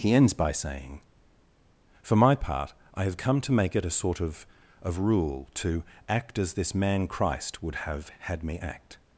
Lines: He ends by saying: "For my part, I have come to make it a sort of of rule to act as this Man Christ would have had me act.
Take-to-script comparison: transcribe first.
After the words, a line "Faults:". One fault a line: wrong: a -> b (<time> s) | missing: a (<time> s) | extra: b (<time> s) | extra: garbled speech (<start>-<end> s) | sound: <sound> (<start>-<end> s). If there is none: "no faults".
He ends by saying: "For my part, I have come to make it a sort of of rule to act as this Man Christ would have had me act.
Faults:
no faults